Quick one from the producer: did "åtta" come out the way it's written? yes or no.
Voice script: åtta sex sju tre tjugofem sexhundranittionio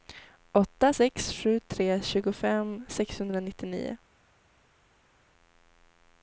yes